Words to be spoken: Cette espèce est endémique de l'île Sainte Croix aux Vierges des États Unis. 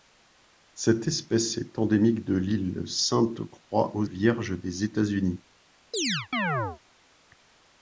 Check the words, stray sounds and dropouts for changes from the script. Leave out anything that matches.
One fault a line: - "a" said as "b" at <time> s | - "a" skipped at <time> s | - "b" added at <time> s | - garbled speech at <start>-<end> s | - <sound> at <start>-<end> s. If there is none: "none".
- chirp at 5.9-6.8 s